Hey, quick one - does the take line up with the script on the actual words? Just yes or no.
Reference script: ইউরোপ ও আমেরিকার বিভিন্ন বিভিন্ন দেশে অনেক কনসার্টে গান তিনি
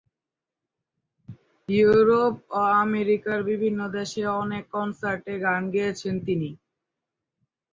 no